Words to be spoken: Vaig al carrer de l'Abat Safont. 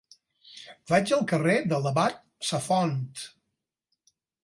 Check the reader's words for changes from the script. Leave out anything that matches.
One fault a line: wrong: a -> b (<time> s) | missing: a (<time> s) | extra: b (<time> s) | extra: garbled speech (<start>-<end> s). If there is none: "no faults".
no faults